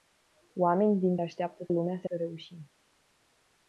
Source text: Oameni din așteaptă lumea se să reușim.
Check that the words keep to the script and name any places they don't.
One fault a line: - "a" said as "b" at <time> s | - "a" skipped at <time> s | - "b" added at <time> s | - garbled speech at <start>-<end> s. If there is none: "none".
none